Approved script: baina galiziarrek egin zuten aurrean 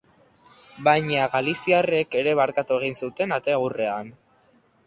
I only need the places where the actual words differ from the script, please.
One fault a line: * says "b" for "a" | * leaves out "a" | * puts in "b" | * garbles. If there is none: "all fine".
* puts in "ere barkatu"
* puts in "ate"